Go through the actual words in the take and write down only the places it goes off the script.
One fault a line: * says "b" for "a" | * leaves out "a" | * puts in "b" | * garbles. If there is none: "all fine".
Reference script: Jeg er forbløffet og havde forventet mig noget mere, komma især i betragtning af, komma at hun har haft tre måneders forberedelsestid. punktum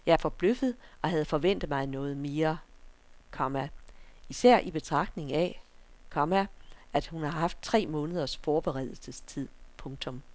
all fine